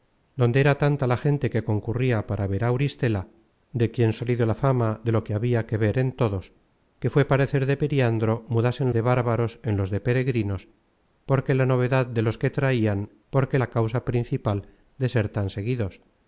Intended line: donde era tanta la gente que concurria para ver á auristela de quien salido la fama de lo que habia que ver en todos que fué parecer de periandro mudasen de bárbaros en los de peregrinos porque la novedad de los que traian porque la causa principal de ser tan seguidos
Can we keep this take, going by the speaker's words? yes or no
yes